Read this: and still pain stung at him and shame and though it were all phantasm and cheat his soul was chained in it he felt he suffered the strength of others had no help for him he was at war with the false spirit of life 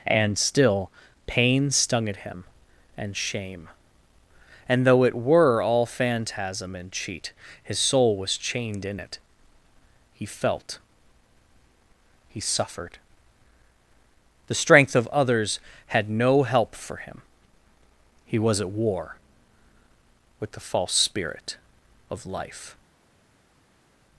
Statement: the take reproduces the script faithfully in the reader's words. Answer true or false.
true